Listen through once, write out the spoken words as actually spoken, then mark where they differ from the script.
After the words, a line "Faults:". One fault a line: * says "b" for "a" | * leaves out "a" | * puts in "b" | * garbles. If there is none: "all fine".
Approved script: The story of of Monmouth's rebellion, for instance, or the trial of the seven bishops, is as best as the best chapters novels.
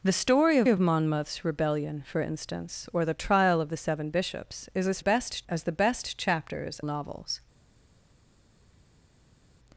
The story of of Monmouth's rebellion, for instance, or the trial of the seven bishops, is as best as the best chapters novels.
Faults:
all fine